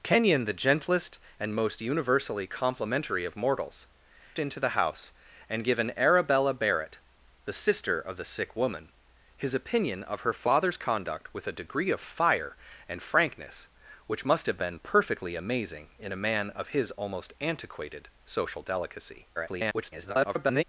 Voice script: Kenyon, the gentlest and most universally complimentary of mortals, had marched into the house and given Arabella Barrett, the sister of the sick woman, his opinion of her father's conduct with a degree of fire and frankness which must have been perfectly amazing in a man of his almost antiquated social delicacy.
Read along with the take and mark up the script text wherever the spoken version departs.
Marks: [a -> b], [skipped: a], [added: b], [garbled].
Kenyon, the gentlest and most universally complimentary of mortals, [skipped: had marched] into the house and given Arabella Barrett, the sister of the sick woman, his opinion of her father's conduct with a degree of fire and frankness which must have been perfectly amazing in a man of his almost antiquated social delicacy. [garbled]